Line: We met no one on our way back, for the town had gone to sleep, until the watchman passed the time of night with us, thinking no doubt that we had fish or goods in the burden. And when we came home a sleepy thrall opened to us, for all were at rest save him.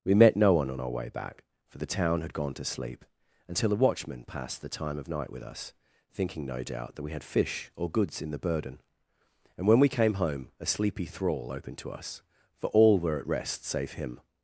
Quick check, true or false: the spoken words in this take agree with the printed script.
false